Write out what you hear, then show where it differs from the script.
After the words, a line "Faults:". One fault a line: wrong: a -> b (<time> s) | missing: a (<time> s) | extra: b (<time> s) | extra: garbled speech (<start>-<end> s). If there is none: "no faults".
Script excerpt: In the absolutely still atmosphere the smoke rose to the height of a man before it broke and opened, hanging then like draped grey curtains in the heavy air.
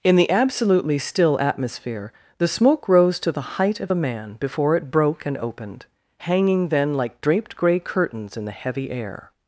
In the absolutely still atmosphere the smoke rose to the height of a man before it broke and opened, hanging then like draped grey curtains in the heavy air.
Faults:
no faults